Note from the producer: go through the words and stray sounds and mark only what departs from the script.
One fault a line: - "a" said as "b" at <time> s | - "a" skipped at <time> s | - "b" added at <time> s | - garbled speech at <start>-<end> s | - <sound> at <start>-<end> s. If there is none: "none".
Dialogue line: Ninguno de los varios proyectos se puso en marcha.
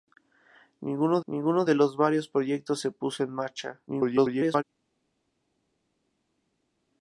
- "ninguno" added at 1.2 s
- garbled speech at 3.9-4.6 s